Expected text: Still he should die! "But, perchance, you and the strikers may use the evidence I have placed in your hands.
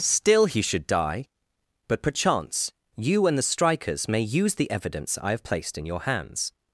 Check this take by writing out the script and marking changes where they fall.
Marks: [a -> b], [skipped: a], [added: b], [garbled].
Still he should die! "But, perchance, you and the strikers may use the evidence I have placed in your hands.